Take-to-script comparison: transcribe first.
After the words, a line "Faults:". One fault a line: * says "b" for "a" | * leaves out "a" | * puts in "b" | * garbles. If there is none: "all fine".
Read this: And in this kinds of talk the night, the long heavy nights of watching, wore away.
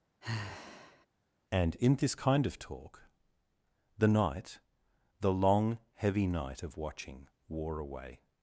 And in this kind of talk the night, the long heavy night of watching, wore away.
Faults:
* says "kind" for "kinds"
* says "night" for "nights"